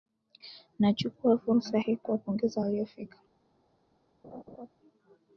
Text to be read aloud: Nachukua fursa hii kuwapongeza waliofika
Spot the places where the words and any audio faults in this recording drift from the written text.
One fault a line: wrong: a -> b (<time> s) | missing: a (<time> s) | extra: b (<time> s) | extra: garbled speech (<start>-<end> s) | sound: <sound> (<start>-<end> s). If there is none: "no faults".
sound: laugh (4.2-4.7 s)